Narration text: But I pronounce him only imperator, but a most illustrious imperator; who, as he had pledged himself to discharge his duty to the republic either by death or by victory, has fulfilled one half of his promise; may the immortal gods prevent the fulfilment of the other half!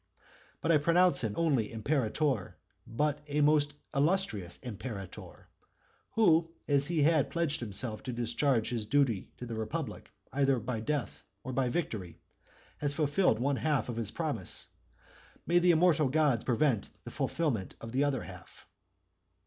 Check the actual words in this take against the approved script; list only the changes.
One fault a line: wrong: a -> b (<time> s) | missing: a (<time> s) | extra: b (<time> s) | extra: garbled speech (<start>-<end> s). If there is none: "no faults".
no faults